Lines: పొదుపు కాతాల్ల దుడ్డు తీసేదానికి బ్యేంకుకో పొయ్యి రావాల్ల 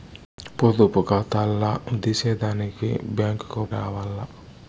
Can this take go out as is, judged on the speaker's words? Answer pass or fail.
fail